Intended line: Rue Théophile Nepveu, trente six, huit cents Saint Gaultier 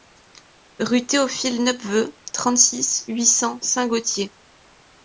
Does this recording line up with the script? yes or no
yes